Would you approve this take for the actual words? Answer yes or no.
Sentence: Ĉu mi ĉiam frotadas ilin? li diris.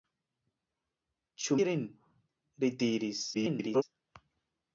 no